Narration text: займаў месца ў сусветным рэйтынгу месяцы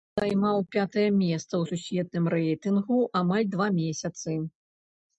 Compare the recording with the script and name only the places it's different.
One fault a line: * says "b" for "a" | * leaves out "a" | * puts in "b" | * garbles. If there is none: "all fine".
* puts in "пятае"
* puts in "амаль два"